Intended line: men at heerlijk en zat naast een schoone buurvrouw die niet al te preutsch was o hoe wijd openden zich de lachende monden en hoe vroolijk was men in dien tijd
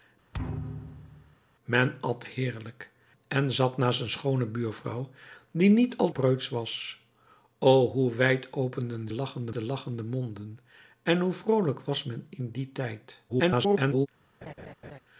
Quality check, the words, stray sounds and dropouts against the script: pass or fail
fail